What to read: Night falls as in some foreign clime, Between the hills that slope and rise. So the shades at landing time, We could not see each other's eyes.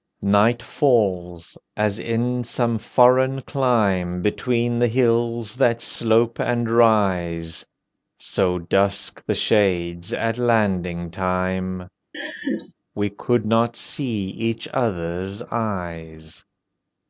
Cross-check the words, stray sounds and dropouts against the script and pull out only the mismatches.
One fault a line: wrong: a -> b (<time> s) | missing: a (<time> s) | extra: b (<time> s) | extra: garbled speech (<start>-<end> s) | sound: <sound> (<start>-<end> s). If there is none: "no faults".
extra: dusk (8.6 s)
sound: laugh (12.1-12.7 s)